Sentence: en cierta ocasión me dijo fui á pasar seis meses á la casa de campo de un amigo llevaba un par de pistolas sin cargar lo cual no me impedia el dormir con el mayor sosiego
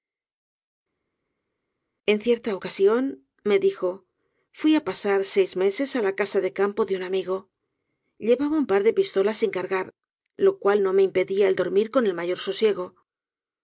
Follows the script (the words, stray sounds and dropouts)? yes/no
yes